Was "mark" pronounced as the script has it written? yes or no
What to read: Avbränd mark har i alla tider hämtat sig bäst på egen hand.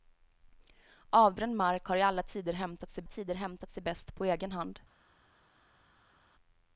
yes